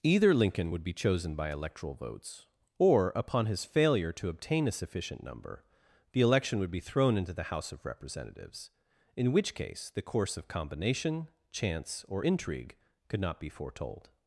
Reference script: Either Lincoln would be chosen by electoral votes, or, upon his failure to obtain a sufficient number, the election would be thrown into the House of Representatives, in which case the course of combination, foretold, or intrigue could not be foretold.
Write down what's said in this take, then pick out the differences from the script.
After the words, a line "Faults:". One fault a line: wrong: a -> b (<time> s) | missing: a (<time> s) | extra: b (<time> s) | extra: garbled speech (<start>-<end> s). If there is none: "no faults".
Either Lincoln would be chosen by electoral votes, or, upon his failure to obtain a sufficient number, the election would be thrown into the House of Representatives, in which case the course of combination, chance, or intrigue could not be foretold.
Faults:
wrong: foretold -> chance (11.5 s)